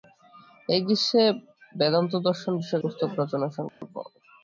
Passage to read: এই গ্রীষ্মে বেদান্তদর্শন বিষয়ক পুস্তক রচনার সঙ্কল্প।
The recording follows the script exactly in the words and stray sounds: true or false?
false